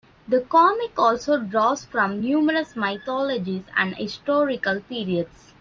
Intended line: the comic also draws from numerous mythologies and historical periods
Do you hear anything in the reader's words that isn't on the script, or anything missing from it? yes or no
no